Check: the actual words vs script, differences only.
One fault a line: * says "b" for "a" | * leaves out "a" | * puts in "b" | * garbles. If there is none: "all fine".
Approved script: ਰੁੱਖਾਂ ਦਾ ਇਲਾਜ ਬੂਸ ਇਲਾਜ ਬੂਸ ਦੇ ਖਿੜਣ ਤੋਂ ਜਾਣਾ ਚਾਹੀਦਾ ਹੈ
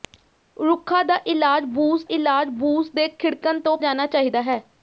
all fine